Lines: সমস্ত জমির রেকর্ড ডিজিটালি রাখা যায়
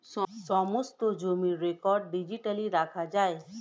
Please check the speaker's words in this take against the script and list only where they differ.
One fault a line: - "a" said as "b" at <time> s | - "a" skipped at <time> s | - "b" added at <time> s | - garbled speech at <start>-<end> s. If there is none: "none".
none